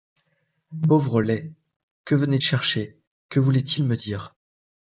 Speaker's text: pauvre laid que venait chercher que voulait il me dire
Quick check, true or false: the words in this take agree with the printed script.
true